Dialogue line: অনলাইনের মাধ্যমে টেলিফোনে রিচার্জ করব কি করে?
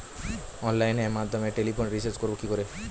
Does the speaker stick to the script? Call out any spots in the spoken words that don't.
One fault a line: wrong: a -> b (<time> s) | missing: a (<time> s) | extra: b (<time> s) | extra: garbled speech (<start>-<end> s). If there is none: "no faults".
no faults